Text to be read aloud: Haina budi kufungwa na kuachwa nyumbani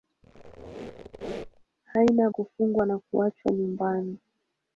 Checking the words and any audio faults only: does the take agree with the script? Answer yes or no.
no